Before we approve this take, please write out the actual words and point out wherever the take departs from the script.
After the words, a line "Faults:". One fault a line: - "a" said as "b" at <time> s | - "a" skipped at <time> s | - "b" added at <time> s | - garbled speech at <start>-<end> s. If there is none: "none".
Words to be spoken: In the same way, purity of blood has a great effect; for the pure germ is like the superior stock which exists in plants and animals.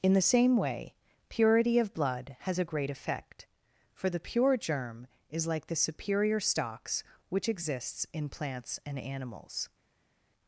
In the same way, purity of blood has a great effect; for the pure germ is like the superior stocks which exists in plants and animals.
Faults:
- "stock" said as "stocks" at 6.4 s